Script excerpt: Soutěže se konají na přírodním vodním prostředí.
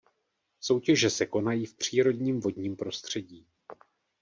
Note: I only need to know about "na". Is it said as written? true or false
false